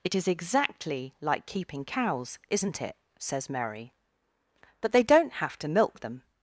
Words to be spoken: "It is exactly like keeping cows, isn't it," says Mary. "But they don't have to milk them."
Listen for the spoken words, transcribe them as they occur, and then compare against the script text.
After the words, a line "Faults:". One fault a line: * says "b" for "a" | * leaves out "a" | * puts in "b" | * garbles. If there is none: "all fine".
"It is exactly like keeping cows, isn't it," says Mary. "But they don't have to milk them."
Faults:
all fine